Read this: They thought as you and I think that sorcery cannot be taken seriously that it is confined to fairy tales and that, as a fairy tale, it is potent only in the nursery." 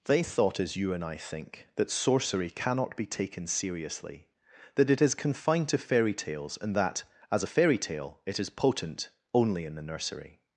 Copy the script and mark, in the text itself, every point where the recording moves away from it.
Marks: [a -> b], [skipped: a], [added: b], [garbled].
They thought as you and I think that sorcery cannot be taken seriously that it is confined to fairy tales and that, as a fairy tale, it is potent only in the nursery."